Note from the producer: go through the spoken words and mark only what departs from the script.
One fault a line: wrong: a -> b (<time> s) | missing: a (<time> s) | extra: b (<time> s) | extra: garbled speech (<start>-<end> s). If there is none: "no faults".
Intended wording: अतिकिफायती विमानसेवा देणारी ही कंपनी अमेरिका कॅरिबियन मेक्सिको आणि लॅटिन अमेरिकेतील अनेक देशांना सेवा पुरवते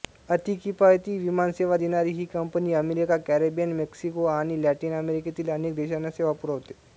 no faults